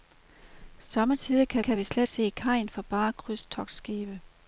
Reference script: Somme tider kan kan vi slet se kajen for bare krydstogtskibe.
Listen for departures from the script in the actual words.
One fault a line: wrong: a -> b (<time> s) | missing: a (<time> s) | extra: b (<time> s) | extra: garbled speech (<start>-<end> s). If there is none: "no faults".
no faults